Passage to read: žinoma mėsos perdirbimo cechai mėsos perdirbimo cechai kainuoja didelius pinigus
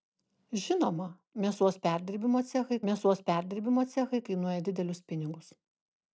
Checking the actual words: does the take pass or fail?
pass